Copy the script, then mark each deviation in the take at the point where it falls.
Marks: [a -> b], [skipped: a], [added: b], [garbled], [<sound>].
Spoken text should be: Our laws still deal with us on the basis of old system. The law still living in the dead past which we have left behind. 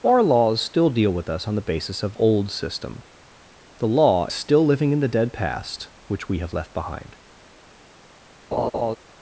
Our laws still deal with us on the basis of old system. The law still living in the dead past which we have left behind. [laugh]